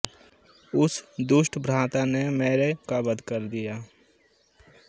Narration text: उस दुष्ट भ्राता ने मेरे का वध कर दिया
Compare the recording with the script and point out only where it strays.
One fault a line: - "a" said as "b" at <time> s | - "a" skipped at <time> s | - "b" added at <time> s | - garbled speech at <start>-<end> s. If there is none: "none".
none